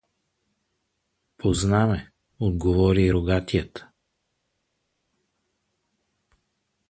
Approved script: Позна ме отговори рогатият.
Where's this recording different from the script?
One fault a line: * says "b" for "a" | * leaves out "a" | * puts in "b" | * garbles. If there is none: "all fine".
all fine